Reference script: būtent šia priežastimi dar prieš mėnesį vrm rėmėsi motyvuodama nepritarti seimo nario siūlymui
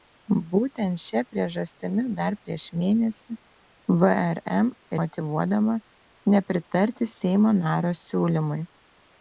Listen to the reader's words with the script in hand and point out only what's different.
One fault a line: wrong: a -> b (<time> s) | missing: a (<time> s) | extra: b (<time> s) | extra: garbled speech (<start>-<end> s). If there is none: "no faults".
missing: rėmėsi (4.7 s)